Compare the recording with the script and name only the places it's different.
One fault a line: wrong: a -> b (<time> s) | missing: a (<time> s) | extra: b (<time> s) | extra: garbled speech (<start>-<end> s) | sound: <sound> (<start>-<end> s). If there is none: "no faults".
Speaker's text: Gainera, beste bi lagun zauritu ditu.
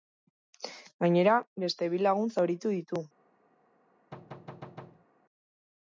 sound: thud (4.1-5.1 s)